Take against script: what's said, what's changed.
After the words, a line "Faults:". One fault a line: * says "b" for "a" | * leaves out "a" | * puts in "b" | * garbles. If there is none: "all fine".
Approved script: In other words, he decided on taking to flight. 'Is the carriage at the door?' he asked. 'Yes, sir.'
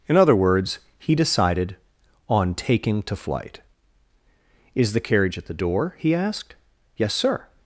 In other words, he decided on taking to flight. 'Is the carriage at the door?' he asked. 'Yes, sir.'
Faults:
all fine